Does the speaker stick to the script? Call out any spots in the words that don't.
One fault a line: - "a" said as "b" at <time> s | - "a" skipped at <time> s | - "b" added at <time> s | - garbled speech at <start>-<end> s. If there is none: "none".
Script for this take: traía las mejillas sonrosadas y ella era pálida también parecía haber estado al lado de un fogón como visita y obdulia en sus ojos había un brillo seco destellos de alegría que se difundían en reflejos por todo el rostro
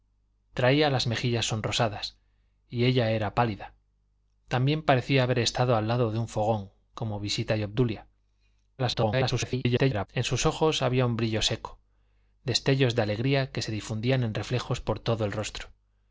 - garbled speech at 8.8-10.1 s